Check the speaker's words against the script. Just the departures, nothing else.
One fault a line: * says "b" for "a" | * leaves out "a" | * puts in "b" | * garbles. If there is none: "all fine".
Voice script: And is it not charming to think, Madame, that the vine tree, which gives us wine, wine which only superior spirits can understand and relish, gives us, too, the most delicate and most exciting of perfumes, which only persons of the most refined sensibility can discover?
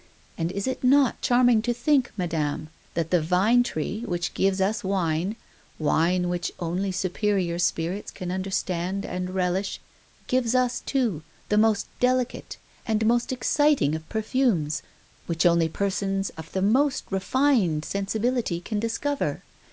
all fine